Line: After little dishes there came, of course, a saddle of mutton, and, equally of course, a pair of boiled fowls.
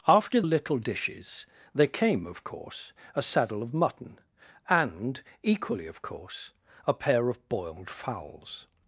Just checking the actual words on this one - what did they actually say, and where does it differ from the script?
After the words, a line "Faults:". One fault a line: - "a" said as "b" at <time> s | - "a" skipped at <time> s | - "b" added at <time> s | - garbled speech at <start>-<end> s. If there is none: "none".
After little dishes there came, of course, a saddle of mutton, and, equally of course, a pair of boiled fowls.
Faults:
none